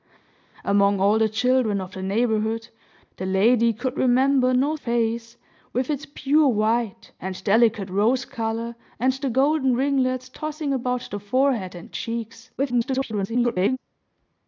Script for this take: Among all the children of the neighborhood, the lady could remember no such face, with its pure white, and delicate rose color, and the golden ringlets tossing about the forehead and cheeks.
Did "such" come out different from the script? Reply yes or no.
yes